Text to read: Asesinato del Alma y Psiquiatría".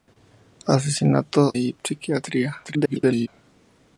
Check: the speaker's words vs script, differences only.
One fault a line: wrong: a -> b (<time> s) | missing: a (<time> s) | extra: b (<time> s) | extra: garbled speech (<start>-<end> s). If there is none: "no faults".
missing: del Alma (1.6 s)
extra: garbled speech (2.6-3.3 s)